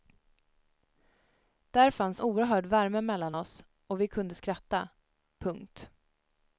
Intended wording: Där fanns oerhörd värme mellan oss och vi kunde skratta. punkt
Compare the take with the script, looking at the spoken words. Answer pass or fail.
pass